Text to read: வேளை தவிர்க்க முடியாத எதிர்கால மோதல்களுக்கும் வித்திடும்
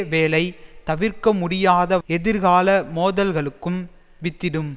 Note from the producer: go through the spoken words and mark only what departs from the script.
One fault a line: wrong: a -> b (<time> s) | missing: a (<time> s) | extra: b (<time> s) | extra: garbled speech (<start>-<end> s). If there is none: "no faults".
no faults